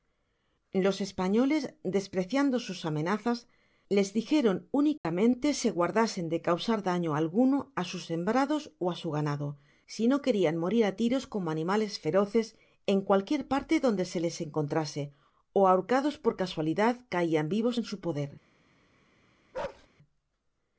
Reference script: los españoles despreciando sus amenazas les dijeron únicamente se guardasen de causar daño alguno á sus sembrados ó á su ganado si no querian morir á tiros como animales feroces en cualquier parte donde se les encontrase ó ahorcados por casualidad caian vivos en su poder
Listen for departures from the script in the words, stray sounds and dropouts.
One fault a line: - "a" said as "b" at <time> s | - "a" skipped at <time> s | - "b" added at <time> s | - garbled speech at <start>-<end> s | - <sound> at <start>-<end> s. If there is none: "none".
- dropout at 5.0-5.0 s
- bark at 19.5-19.9 s